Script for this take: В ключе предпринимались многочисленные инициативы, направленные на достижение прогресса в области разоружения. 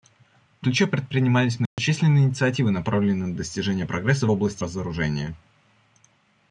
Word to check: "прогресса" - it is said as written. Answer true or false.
true